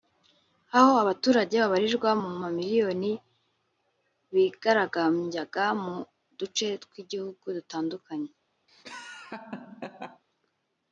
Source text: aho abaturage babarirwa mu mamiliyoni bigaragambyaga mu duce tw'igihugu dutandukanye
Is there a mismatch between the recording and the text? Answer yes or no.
no